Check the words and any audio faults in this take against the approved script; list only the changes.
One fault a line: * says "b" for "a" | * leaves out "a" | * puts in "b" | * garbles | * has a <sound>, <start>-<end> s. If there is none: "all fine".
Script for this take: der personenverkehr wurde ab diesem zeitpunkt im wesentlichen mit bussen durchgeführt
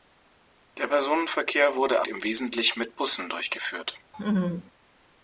* leaves out "ab diesem zeitpunkt"
* has a laugh, 4.1-4.7 s